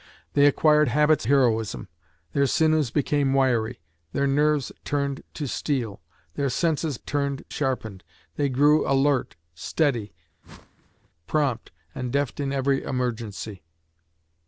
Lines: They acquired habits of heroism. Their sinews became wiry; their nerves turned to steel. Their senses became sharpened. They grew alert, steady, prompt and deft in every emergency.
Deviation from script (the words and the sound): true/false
true